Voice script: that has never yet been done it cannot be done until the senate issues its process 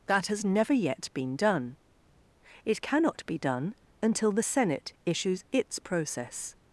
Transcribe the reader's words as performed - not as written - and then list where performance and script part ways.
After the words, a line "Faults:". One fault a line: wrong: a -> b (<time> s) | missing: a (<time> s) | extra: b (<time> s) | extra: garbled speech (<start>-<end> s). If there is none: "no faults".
that has never yet been done it cannot be done until the senate issues its process
Faults:
no faults